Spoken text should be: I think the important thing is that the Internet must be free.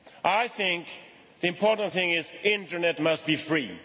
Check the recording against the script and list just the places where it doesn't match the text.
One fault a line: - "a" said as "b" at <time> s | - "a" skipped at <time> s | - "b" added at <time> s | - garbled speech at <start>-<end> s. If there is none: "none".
none